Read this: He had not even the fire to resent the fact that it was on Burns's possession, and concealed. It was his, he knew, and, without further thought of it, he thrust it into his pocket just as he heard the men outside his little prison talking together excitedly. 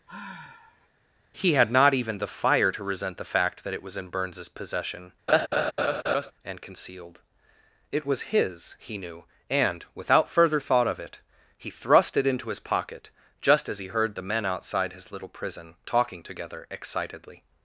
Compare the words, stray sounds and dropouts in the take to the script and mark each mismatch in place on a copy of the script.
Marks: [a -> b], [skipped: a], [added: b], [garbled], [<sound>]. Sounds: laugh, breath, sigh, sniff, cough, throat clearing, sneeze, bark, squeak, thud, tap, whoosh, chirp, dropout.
[sigh] He had not even the fire to resent the fact that it was [on -> in] Burns's possession, [laugh] and concealed. It was his, he knew, and, without further thought of it, he thrust it into his pocket just as he heard the men outside his little prison talking together excitedly.